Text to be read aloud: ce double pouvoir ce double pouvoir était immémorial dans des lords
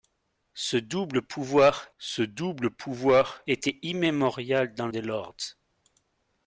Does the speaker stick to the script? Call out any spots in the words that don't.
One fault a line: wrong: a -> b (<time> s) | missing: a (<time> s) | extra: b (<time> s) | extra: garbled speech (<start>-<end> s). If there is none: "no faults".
no faults